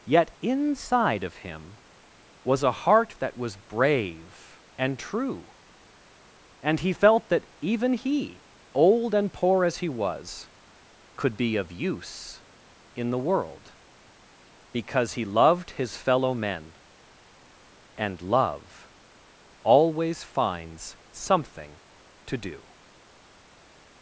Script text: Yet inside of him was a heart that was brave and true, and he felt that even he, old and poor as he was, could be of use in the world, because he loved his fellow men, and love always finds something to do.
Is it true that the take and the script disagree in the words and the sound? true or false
false